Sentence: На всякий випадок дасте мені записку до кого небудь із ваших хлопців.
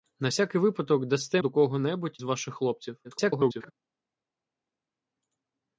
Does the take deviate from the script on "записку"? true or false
true